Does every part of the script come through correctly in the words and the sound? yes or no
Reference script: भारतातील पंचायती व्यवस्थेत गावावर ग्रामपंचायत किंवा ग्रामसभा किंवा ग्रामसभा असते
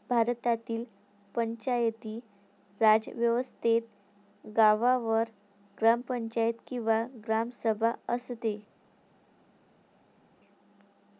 no